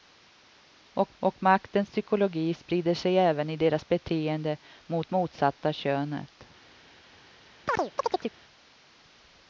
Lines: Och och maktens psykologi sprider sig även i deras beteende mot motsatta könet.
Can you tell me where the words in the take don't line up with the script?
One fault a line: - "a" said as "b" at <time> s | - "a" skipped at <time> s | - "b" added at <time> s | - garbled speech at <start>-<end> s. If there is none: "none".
none